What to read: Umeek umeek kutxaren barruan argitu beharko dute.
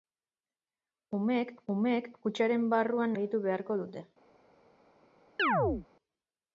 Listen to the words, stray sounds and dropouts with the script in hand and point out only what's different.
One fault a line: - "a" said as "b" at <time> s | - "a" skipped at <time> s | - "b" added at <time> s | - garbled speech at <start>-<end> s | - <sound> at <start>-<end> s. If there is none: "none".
- chirp at 5.4-5.9 s